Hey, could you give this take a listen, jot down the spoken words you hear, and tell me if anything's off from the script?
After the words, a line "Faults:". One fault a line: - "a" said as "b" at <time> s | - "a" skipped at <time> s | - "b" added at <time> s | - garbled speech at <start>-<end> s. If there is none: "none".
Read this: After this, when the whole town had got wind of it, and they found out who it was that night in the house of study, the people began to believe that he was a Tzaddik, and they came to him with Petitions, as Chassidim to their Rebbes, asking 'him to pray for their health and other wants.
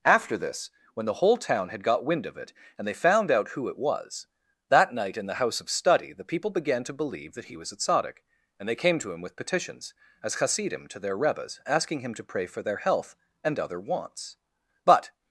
After this, when the whole town had got wind of it, and they found out who it was that night in the house of study, the people began to believe that he was a Tzaddik, and they came to him with Petitions, as Chassidim to their Rebbes, asking 'him to pray for their health and other wants. But
Faults:
- "But" added at 14.8 s